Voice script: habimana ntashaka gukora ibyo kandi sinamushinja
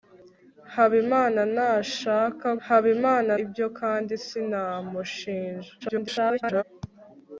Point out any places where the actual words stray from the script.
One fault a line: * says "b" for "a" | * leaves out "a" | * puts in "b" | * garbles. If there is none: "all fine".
* says "habimana" for "gukora"
* garbles